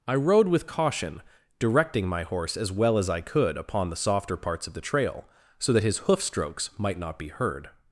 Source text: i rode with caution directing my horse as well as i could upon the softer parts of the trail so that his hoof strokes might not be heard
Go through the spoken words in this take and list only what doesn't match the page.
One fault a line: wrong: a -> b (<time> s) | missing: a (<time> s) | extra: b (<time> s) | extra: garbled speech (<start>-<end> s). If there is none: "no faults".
no faults